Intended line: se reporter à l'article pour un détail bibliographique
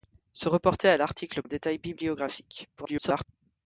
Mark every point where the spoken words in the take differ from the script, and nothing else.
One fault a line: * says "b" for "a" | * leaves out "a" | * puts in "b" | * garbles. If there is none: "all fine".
* leaves out "pour"
* garbles